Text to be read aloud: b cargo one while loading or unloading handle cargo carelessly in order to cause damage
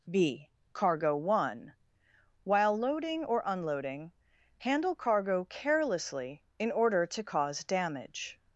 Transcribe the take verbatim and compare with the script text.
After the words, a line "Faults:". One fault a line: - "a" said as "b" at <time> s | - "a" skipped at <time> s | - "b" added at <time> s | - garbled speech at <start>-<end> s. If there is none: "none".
b cargo one while loading or unloading handle cargo carelessly in order to cause damage
Faults:
none